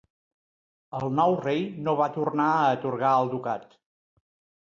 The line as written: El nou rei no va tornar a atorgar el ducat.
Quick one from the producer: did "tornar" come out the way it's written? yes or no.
yes